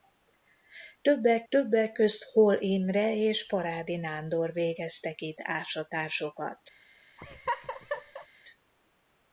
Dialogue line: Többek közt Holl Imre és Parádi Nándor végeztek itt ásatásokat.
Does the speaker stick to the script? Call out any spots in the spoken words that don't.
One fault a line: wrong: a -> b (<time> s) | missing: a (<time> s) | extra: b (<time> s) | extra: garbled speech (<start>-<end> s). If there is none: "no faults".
extra: többek (1.5 s)